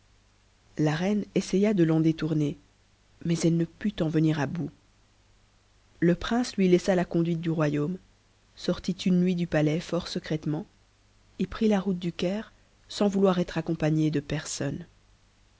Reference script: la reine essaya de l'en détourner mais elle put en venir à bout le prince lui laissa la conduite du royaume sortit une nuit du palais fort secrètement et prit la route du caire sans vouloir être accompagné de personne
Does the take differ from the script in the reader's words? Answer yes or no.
yes